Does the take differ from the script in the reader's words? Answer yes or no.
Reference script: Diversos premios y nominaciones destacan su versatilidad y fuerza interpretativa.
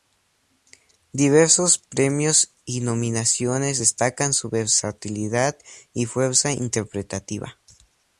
no